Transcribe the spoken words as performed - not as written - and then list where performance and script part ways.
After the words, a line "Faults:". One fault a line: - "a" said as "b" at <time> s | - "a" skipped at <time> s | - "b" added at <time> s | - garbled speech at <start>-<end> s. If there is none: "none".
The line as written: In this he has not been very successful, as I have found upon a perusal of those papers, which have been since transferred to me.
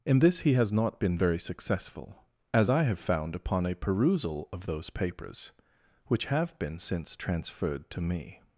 In this he has not been very successful, as I have found upon a perusal of those papers, which have been since transferred to me.
Faults:
none